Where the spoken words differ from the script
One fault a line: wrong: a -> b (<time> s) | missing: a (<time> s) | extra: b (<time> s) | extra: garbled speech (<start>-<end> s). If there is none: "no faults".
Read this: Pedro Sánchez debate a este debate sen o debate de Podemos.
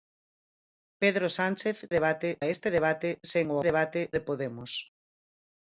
no faults